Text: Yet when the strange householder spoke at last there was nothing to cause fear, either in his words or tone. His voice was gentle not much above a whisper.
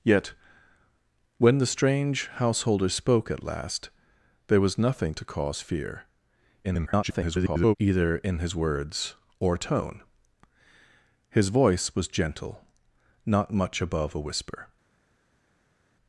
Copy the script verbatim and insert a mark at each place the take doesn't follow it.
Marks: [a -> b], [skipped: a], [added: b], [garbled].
Yet when the strange householder spoke at last there was nothing to cause fear, [garbled] either in his words or tone. His voice was gentle not much above a whisper.